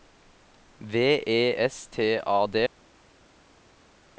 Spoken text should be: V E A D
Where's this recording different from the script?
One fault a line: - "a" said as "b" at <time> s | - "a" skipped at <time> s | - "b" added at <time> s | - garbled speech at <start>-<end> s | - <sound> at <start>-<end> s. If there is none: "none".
- "S T" added at 1.6 s